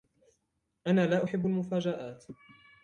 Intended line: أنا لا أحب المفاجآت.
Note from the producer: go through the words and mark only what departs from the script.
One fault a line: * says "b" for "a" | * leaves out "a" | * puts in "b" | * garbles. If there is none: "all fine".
all fine